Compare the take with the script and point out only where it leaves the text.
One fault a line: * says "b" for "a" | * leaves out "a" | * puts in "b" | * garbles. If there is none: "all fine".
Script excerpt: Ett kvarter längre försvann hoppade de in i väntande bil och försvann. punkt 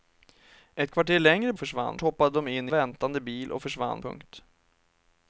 all fine